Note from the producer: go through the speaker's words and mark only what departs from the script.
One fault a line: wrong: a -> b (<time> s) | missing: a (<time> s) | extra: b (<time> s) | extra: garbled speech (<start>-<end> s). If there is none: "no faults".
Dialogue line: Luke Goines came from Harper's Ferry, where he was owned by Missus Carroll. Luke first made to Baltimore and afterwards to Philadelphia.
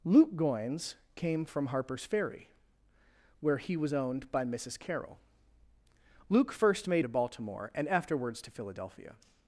no faults